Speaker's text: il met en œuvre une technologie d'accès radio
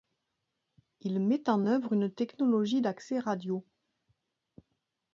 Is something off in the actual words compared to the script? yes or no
no